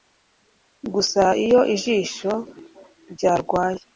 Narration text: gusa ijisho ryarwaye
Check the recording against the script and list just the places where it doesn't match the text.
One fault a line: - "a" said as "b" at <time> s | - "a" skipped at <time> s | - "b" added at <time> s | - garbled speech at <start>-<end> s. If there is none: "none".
- "iyo" added at 1.4 s